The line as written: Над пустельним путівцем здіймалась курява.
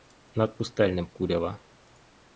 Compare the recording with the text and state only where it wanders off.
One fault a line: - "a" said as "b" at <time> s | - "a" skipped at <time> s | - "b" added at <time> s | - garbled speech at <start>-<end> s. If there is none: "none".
- "путівцем здіймалась" skipped at 1.1 s